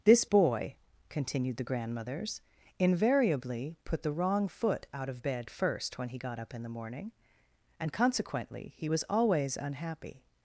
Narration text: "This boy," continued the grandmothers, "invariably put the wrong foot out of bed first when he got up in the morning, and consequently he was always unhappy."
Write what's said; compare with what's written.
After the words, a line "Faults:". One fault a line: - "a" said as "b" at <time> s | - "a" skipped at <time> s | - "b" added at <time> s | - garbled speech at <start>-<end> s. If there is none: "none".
"This boy," continued the grandmothers, "invariably put the wrong foot out of bed first when he got up in the morning, and consequently he was always unhappy."
Faults:
none